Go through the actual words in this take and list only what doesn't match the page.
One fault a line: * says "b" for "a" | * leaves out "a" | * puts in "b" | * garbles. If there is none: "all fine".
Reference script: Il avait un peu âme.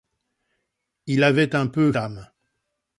all fine